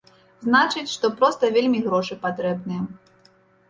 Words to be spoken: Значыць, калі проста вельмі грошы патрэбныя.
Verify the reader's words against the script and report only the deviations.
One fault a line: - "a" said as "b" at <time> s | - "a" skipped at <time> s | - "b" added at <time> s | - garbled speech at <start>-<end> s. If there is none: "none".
- "калі" said as "што" at 0.9 s